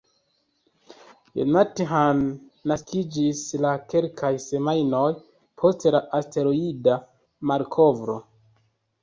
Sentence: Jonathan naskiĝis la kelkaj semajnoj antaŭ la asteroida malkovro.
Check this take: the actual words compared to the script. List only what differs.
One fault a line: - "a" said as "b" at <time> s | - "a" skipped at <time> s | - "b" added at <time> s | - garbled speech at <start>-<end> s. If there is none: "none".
- "antaŭ" said as "post" at 5.6 s